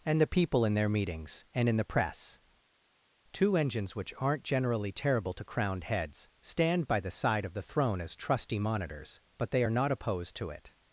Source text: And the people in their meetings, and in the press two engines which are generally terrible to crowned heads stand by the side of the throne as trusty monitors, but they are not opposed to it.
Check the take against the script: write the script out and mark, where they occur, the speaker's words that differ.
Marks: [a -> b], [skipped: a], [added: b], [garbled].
And the people in their meetings, and in the press two engines which [are -> aren't] generally terrible to crowned heads stand by the side of the throne as trusty monitors, but they are not opposed to it.